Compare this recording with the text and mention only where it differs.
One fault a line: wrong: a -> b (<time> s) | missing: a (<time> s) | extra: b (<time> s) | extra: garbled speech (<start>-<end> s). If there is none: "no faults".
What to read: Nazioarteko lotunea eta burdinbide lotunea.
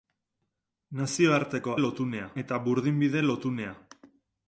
no faults